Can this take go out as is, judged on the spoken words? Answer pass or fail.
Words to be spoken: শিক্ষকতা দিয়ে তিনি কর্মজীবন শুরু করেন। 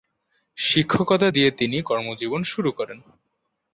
pass